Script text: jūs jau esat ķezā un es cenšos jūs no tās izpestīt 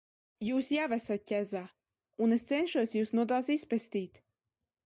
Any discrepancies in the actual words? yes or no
no